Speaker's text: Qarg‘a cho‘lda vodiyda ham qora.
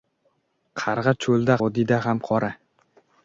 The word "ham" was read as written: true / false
true